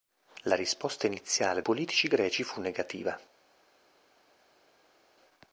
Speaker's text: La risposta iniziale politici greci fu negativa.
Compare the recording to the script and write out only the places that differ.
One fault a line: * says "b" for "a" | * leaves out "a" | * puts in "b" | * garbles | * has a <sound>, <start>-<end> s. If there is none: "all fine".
all fine